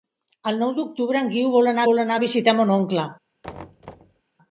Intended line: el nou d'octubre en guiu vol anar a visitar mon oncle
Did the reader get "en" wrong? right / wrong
right